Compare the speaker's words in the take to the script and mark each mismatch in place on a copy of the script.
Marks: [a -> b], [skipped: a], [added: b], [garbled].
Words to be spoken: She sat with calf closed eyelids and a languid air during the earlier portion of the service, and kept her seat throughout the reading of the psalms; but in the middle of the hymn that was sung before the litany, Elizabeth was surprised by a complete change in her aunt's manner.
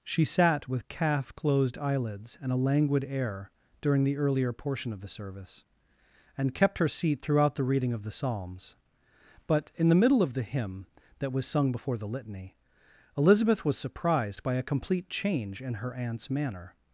She sat with calf closed eyelids and a languid air during the earlier portion of the service, and kept her seat throughout the reading of the psalms; but in the middle of the hymn that was sung before the litany, Elizabeth was surprised by a complete change in her aunt's manner.